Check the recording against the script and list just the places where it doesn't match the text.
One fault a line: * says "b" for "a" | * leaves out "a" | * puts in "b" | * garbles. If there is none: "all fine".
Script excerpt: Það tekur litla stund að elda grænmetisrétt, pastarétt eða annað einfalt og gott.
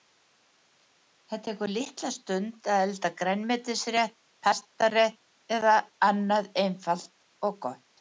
all fine